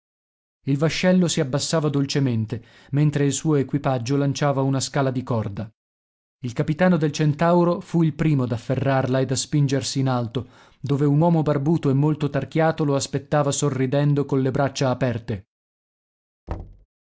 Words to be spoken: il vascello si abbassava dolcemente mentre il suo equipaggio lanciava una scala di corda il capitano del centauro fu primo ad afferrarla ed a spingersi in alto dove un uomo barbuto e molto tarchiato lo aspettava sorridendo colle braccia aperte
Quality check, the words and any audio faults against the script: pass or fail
fail